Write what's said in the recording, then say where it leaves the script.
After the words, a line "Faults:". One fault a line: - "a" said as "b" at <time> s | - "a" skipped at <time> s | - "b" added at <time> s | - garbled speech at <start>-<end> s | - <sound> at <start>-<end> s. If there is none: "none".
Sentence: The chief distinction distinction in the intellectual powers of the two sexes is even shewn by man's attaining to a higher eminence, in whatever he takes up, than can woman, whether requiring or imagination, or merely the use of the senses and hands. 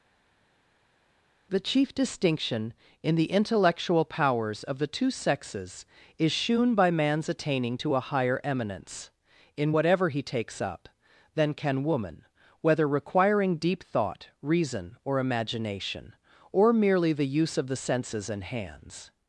The chief distinction in the intellectual powers of the two sexes is shewn by man's attaining to a higher eminence, in whatever he takes up, than can woman, whether requiring deep thought, reason, or imagination, or merely the use of the senses and hands.
Faults:
- "distinction" skipped at 2.8 s
- "even" skipped at 6.3 s
- "deep thought reason" added at 13.6 s